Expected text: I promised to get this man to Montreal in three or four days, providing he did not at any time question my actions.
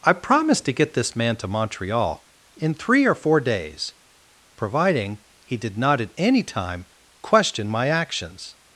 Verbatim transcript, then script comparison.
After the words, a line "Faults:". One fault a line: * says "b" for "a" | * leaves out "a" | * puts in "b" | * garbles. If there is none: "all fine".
I promised to get this man to Montreal in three or four days, providing he did not at any time question my actions.
Faults:
all fine